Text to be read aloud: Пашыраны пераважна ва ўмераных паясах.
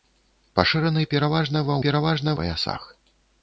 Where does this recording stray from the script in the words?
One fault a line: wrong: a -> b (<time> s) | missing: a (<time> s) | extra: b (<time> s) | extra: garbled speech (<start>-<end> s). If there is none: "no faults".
wrong: ўмераных -> пераважна (1.8 s)